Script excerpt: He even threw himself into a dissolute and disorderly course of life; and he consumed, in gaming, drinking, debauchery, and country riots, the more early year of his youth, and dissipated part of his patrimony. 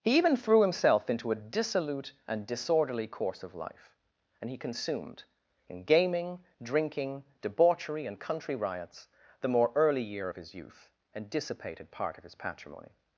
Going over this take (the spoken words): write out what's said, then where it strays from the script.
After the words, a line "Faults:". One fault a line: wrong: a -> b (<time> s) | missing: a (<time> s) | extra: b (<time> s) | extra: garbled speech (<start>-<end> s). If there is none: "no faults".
He even threw himself into a dissolute and disorderly course of life; and he consumed, in gaming, drinking, debauchery, and country riots, the more early year of his youth, and dissipated part of his patrimony.
Faults:
no faults